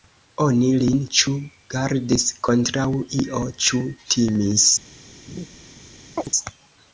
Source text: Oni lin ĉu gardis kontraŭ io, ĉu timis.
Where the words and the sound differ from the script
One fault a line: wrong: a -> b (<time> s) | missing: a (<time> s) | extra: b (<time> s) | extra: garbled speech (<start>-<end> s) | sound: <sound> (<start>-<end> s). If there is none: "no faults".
sound: laugh (5.3-5.5 s)
sound: chirp (6.2-6.3 s)